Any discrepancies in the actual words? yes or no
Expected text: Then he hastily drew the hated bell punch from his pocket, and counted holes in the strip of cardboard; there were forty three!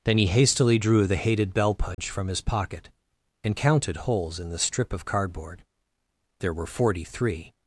no